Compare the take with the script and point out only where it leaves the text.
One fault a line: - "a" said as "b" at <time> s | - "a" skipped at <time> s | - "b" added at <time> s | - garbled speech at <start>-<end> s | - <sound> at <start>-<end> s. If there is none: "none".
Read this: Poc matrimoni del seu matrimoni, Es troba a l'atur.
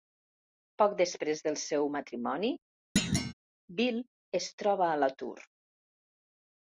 - "matrimoni" said as "després" at 1.0 s
- thud at 3.0-3.3 s
- "Bill" added at 3.8 s